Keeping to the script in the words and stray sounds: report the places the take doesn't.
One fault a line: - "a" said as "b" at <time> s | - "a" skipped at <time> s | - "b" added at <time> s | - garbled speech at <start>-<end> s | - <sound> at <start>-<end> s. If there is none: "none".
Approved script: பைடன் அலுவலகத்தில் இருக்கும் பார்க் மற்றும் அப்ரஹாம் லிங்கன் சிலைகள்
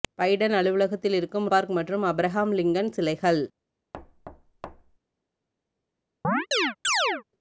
- thud at 3.9-5.0 s
- chirp at 6.2-7.2 s